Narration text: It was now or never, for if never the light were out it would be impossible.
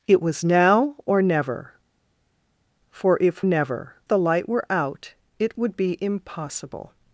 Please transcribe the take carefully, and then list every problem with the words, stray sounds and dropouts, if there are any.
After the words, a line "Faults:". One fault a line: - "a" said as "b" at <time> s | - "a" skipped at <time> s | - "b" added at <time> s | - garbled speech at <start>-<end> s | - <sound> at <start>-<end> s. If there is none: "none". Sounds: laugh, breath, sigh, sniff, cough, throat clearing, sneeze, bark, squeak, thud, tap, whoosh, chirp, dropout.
It was now or never, for if never the light were out it would be impossible.
Faults:
none